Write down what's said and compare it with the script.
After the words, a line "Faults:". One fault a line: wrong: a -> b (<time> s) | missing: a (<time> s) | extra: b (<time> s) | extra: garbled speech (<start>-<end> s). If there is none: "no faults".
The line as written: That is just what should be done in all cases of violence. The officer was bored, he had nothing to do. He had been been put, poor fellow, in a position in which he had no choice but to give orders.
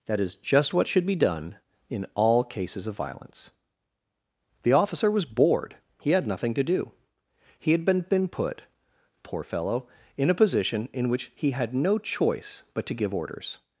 That is just what should be done in all cases of violence. The officer was bored, he had nothing to do. He had been been put, poor fellow, in a position in which he had no choice but to give orders.
Faults:
no faults